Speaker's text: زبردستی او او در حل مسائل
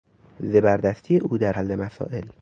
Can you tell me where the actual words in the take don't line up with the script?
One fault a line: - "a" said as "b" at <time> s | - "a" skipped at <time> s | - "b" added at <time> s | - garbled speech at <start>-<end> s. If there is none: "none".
- "او" skipped at 1.4 s